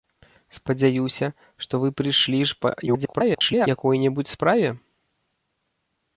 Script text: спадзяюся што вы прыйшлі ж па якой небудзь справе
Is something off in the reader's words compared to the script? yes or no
yes